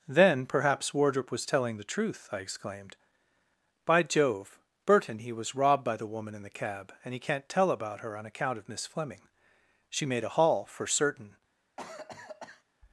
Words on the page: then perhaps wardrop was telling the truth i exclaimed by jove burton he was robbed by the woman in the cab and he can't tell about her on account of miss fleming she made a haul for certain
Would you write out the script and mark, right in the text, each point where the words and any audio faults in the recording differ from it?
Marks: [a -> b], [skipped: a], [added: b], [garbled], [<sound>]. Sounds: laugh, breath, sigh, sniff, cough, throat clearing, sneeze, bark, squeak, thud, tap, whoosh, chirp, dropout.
then perhaps wardrop was telling the truth i exclaimed by jove burton he was robbed by the woman in the cab and he can't tell about her on account of miss fleming she made a haul for certain [cough]